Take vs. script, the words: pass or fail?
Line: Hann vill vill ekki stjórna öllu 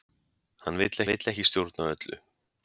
pass